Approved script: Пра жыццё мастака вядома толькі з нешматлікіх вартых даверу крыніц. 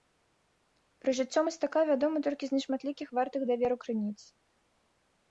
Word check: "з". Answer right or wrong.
right